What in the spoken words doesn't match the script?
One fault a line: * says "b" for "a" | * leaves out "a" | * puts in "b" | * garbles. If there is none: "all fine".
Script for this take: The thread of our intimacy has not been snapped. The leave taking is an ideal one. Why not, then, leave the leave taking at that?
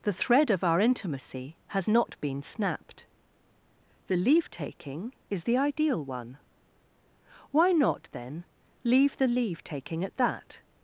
* says "the" for "an"